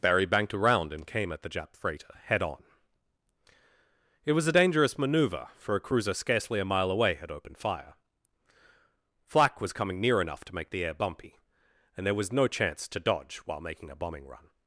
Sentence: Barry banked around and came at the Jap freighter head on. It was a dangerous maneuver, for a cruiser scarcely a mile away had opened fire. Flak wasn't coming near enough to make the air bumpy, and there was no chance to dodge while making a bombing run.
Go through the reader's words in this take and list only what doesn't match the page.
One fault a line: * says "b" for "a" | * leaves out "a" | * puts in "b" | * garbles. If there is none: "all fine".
* says "was" for "wasn't"